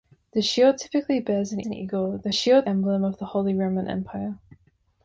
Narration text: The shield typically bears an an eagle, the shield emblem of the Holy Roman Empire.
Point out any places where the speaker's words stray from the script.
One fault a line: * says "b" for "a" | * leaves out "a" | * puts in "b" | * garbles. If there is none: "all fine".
all fine